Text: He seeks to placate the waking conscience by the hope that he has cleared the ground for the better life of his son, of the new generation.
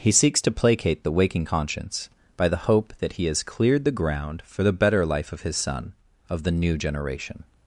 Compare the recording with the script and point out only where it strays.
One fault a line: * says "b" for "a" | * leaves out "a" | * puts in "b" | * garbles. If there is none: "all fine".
all fine